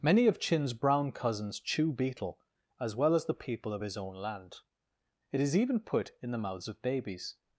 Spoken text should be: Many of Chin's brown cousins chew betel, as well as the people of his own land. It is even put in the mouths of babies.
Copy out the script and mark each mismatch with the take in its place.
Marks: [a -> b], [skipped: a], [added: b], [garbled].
Many of Chin's brown cousins chew betel, as well as the people of his own land. It is even put in the mouths of babies.